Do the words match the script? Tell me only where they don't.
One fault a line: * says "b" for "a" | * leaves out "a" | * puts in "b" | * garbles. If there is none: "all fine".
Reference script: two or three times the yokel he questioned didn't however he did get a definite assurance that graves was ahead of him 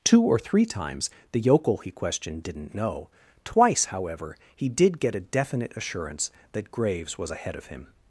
* puts in "know twice"